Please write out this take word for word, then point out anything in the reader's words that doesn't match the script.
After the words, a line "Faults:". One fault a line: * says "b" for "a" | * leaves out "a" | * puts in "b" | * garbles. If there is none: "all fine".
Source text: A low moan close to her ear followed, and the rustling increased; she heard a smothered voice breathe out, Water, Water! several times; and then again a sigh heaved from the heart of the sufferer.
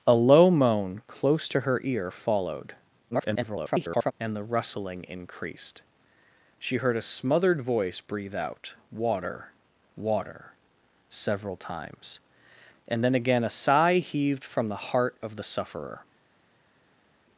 A low moan close to her ear followed, [garbled] and the rustling increased; she heard a smothered voice breathe out, Water, Water! several times; and then again a sigh heaved from the heart of the sufferer.
Faults:
* garbles